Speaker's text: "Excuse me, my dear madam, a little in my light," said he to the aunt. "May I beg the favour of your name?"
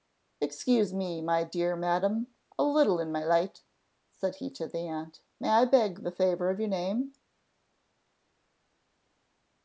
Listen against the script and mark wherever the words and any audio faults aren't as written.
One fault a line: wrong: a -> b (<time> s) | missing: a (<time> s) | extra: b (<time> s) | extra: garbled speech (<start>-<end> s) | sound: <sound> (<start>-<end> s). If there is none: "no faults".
no faults